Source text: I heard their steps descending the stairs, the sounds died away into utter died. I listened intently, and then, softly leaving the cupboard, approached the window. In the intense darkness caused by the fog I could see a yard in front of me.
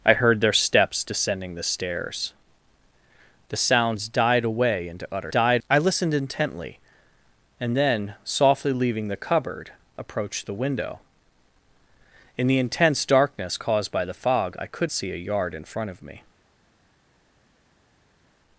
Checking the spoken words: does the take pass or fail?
pass